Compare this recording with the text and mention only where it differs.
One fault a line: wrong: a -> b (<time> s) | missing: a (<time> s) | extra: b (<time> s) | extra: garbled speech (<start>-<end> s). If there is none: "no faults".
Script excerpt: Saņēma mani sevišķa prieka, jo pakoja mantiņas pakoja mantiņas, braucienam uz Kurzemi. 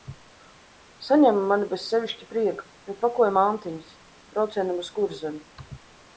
extra: bez (1.7 s)
missing: pakoja mantiņas (4.0 s)